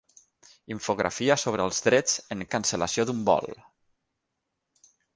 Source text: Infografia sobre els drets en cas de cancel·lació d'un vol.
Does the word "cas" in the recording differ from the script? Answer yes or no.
yes